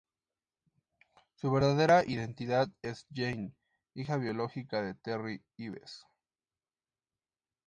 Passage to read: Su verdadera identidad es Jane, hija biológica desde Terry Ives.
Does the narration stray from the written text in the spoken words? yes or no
yes